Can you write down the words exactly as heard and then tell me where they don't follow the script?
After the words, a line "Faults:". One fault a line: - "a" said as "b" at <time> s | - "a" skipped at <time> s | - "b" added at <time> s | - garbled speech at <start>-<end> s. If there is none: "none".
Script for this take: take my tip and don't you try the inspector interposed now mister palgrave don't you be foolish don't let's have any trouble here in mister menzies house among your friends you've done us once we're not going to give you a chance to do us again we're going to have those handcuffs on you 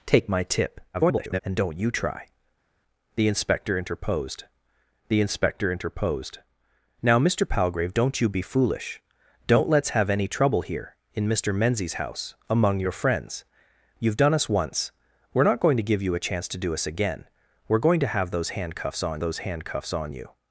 take my tip [garbled] and don't you try the inspector interposed the inspector interposed now mister palgrave don't you be foolish don't let's have any trouble here in mister menzies house among your friends you've done us once we're not going to give you a chance to do us again we're going to have those handcuffs on those handcuffs on you
Faults:
- garbled speech at 0.9-1.4 s
- "the inspector interposed" added at 5.1 s
- "those handcuffs on" added at 19.2 s